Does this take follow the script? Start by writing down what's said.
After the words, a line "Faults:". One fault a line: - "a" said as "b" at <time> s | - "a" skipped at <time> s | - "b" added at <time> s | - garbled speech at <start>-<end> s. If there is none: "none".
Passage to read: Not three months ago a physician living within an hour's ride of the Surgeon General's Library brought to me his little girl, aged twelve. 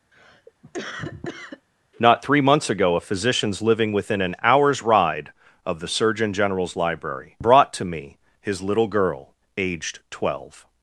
Not three months ago a physicians living within an hour's ride of the Surgeon General's Library brought to me his little girl, aged twelve.
Faults:
- "physician" said as "physicians" at 3.0 s